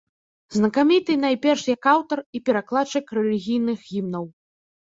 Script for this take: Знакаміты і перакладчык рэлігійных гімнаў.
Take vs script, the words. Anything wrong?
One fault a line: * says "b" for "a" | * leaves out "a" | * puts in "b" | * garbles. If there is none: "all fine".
* puts in "найперш як аўтар"